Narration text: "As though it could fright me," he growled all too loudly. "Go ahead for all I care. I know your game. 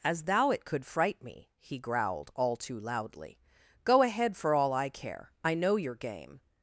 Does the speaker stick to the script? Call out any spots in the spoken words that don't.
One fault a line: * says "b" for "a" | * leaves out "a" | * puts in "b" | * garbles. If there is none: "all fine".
* says "thou" for "though"